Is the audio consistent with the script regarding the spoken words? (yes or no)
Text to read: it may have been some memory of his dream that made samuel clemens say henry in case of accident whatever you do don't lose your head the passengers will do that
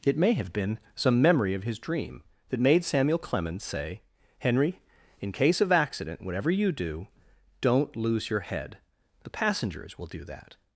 yes